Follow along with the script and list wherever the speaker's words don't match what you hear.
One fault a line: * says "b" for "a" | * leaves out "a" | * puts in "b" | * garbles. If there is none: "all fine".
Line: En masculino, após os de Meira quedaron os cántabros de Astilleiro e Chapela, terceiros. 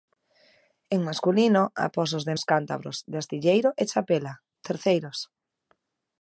* leaves out "Meira quedaron"